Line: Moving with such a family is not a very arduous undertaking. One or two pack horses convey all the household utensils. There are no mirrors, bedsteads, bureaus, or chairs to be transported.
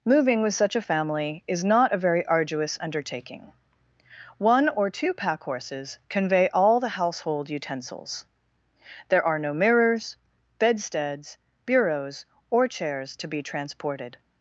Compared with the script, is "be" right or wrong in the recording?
right